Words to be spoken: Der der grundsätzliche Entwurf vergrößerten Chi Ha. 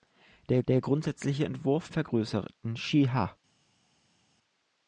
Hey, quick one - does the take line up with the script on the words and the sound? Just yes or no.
yes